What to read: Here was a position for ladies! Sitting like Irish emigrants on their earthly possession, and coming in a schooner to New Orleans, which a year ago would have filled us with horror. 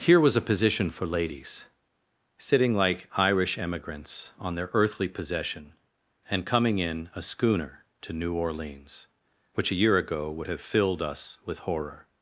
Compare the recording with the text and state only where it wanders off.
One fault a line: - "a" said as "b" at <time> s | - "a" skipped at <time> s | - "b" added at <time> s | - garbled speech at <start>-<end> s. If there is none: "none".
none